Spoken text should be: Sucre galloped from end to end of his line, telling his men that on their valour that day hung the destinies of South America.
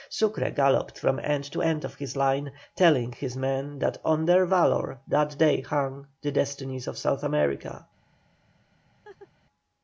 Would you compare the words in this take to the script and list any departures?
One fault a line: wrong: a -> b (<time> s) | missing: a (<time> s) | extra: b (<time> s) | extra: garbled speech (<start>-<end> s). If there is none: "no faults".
no faults